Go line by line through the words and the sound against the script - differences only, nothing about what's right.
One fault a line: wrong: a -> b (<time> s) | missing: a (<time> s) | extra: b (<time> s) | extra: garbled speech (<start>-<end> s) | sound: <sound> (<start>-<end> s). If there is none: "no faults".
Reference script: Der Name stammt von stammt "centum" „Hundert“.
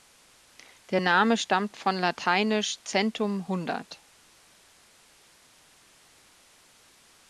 wrong: stammt -> lateinisch (2.0 s)